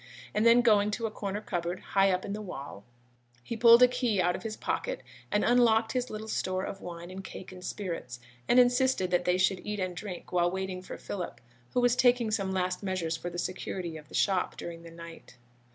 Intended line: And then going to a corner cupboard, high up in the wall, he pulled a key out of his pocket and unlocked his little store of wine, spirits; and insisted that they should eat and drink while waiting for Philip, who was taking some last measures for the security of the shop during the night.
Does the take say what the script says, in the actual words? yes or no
no